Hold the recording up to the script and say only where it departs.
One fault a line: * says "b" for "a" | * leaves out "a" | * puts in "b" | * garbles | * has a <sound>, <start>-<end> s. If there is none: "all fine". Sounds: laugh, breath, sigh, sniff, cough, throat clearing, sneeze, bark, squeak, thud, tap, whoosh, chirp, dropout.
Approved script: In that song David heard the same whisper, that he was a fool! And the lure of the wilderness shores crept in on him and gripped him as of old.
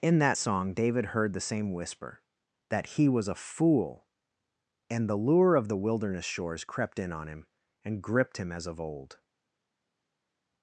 all fine